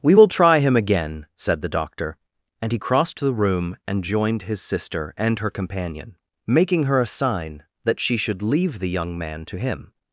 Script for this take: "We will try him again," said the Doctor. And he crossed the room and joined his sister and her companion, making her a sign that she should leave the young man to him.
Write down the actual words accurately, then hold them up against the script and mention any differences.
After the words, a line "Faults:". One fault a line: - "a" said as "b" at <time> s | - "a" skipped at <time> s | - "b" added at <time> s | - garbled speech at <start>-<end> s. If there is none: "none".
"We will try him again," said the Doctor. And he crossed the room and joined his sister and her companion, making her a sign that she should leave the young man to him.
Faults:
none